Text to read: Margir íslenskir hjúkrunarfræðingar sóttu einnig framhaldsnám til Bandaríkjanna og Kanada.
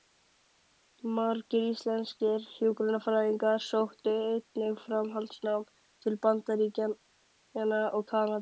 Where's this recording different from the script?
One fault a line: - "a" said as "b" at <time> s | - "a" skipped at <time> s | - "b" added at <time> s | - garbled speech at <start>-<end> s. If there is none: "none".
none